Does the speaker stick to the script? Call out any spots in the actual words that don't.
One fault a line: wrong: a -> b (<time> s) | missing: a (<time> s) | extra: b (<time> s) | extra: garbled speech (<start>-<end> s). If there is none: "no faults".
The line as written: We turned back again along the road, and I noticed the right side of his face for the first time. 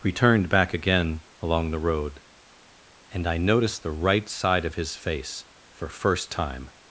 missing: the (5.9 s)